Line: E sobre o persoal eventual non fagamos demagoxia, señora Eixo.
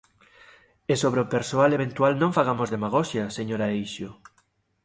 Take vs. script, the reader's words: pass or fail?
pass